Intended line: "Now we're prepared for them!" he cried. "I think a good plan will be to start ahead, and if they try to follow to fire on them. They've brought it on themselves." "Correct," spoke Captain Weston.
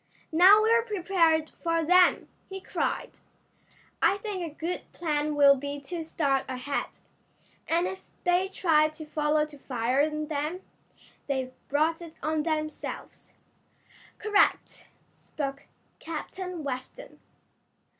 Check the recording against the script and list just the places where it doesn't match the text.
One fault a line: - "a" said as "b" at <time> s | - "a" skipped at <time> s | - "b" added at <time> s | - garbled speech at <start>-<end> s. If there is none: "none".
none